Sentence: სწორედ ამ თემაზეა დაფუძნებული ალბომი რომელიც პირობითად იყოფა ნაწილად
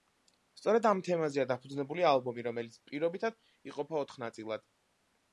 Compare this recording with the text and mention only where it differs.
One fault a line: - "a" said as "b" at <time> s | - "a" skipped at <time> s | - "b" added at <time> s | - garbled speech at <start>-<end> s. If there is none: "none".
- "ოთხ" added at 4.0 s